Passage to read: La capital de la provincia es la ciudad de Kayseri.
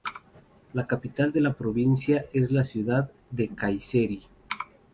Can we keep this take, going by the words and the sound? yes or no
yes